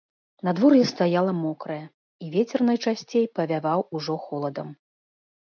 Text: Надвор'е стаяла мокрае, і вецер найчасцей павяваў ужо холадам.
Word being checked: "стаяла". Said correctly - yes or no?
yes